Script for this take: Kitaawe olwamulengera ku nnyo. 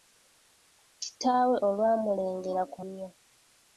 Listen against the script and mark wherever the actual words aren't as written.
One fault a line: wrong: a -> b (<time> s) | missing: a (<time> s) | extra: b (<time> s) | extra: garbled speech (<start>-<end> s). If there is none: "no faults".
no faults